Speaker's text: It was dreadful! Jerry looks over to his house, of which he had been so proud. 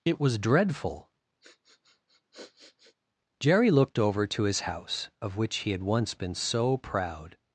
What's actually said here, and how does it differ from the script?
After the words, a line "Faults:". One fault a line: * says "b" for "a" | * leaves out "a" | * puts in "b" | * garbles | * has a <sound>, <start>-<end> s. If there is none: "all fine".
It was dreadful! Jerry looked over to his house, of which he had once been so proud.
Faults:
* has a sniff, 1.4-3.0 s
* says "looked" for "looks"
* puts in "once"